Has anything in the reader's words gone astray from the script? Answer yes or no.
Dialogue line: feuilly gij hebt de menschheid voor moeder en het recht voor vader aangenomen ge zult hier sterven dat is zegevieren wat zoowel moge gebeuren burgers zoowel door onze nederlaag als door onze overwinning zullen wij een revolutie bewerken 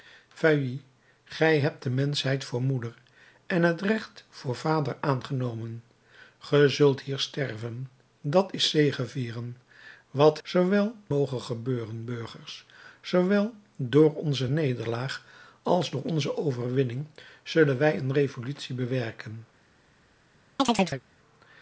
no